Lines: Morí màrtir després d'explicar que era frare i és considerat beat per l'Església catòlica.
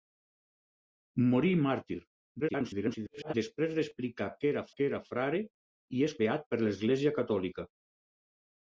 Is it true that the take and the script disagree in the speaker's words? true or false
true